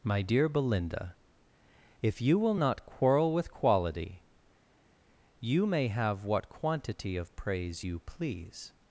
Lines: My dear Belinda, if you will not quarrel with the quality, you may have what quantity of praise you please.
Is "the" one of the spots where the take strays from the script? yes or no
yes